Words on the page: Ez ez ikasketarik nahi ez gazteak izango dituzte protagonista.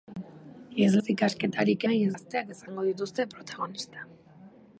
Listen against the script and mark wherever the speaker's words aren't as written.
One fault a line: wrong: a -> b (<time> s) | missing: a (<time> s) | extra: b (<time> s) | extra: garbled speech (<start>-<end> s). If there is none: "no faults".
no faults